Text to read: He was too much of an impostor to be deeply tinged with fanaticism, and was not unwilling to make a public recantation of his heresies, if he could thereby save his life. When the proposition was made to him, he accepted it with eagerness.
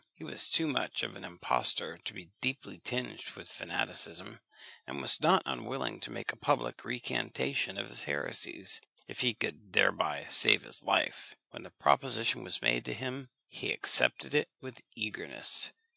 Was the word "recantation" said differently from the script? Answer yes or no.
no